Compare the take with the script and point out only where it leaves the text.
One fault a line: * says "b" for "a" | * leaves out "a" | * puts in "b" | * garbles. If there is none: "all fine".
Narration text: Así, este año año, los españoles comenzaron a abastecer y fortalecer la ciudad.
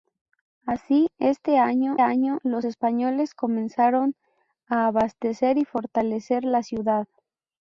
all fine